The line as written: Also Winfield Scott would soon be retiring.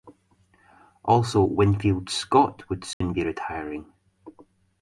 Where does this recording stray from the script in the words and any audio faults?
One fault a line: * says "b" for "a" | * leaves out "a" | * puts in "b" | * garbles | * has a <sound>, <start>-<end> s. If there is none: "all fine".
* has a dropout, 2.9-3.0 s